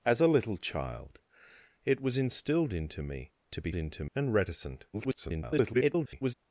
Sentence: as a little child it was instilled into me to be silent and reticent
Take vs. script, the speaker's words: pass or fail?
fail